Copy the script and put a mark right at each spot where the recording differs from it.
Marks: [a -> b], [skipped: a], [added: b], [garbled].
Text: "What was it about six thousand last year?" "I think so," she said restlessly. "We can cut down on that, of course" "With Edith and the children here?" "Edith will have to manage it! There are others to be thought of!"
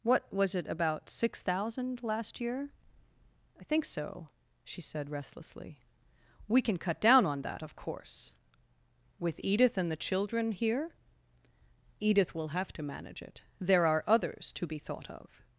"What was it about six thousand last year?" "I think so," she said restlessly. "We can cut down on that, of course" "With Edith and the children here?" "Edith will have to manage it! There are others to be thought of!"